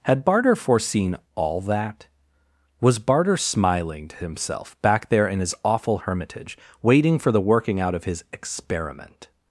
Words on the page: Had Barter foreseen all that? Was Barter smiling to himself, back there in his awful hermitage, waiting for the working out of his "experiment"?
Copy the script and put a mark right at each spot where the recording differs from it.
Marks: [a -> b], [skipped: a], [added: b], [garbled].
Had Barter foreseen all that? Was Barter smiling to himself, back there in his awful hermitage, waiting for the working out of his "experiment"?